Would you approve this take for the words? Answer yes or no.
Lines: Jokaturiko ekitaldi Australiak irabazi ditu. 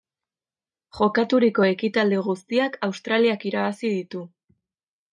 no